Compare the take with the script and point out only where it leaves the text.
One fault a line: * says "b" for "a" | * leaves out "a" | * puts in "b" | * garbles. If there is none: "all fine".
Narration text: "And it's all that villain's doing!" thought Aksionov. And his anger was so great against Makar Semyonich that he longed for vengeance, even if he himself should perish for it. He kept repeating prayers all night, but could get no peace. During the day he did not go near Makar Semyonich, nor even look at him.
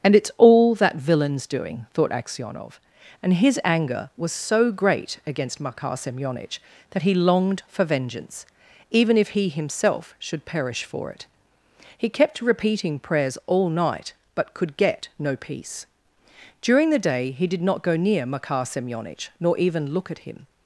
all fine